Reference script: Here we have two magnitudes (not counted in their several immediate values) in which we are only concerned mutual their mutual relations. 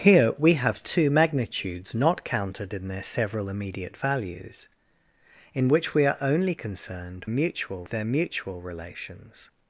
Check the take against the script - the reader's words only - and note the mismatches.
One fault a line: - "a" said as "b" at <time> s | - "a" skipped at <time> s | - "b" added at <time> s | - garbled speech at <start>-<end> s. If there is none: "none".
none